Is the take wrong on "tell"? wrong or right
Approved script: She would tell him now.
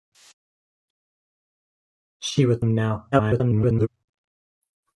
wrong